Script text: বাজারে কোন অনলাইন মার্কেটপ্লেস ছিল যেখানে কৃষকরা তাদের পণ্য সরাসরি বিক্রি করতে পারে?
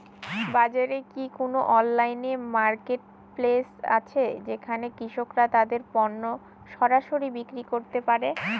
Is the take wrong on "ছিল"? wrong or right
wrong